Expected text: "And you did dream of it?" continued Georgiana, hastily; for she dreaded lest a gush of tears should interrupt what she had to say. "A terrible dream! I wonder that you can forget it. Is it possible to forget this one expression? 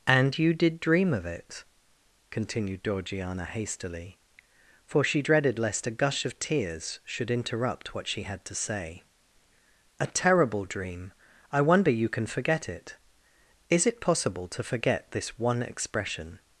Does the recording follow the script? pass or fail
fail